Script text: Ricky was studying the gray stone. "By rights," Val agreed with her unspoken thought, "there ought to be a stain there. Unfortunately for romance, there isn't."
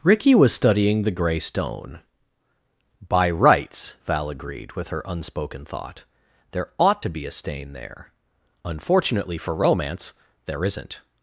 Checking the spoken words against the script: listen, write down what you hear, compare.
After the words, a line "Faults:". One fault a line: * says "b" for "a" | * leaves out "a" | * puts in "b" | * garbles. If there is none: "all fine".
Ricky was studying the gray stone. "By rights," Val agreed with her unspoken thought, "there ought to be a stain there. Unfortunately for romance, there isn't."
Faults:
all fine